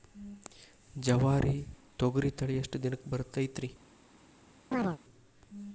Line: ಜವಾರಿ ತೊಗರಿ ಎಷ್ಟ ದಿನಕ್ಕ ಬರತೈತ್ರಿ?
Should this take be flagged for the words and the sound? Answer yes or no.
yes